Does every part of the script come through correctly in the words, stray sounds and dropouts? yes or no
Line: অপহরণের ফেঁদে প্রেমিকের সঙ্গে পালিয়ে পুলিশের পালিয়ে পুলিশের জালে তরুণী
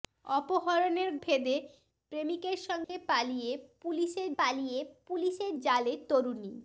no